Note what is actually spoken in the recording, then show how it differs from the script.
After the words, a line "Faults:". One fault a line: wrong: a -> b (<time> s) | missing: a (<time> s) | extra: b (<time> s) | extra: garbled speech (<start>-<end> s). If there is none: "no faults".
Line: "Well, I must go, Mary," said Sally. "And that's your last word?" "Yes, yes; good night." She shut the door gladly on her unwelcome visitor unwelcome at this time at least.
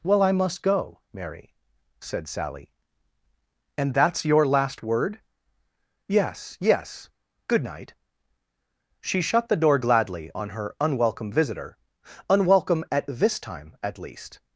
"Well, I must go, Mary," said Sally. "And that's your last word?" "Yes, yes; good night." She shut the door gladly on her unwelcome visitor unwelcome at this time at least.
Faults:
no faults